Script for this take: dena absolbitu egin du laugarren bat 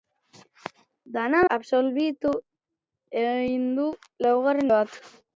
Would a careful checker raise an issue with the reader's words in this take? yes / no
no